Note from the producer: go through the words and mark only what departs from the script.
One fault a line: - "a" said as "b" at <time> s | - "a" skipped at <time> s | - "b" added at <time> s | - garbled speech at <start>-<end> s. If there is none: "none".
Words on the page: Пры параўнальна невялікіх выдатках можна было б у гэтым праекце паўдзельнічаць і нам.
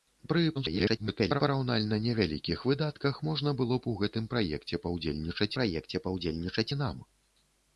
- garbled speech at 0.5-1.4 s
- "праекце паўдзельнічаць" added at 5.6 s